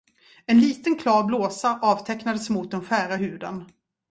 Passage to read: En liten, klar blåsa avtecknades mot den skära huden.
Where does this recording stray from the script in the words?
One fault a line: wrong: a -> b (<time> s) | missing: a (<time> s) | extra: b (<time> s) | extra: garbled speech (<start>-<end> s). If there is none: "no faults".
no faults